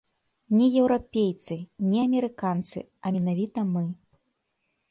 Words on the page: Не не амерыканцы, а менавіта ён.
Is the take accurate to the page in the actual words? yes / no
no